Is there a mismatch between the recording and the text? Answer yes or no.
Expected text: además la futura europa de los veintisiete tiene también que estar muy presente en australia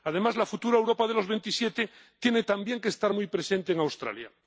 no